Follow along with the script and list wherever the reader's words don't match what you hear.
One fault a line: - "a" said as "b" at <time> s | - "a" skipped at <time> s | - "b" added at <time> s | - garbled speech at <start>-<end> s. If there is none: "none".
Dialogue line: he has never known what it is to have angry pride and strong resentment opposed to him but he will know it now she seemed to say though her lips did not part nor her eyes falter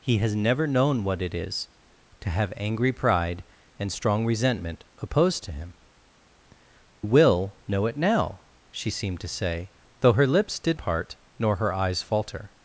- "but he" skipped at 5.7 s
- "not" skipped at 10.8 s